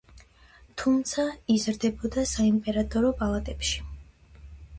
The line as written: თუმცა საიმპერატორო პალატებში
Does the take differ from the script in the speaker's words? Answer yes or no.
yes